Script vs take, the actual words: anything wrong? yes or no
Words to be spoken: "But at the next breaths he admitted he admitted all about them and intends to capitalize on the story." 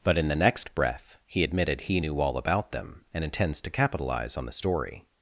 yes